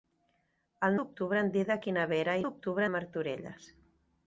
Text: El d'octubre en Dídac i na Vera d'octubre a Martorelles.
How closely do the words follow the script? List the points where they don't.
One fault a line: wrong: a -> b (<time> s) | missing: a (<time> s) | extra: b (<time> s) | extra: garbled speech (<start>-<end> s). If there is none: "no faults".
no faults